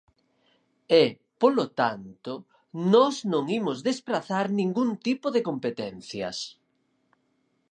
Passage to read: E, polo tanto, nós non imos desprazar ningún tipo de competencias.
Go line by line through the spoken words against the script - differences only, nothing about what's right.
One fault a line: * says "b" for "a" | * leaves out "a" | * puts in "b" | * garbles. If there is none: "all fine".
all fine